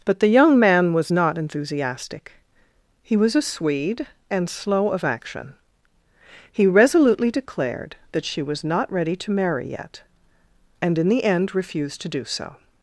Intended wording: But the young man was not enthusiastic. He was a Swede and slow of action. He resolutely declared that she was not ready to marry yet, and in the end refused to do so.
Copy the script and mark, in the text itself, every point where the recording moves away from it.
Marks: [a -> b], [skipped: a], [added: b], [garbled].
But the young man was not enthusiastic. He was a Swede and slow of action. He resolutely declared that she was not ready to marry yet, and in the end refused to do so.